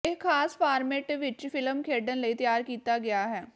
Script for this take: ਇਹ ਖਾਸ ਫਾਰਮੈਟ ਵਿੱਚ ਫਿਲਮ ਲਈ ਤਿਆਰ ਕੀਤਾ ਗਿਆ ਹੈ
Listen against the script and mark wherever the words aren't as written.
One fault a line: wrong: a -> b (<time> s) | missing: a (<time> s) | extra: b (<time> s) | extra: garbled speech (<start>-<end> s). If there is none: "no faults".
extra: ਖੇਡਣ (1.8 s)